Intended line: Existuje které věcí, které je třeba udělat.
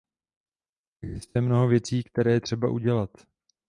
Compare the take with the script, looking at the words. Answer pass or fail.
fail